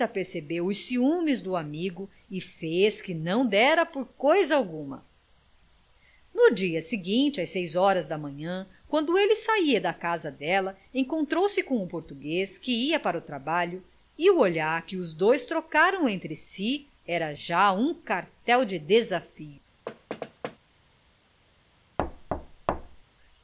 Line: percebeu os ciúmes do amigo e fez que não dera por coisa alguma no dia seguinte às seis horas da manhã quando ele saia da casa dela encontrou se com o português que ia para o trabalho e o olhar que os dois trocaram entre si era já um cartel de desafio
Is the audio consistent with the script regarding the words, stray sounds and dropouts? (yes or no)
no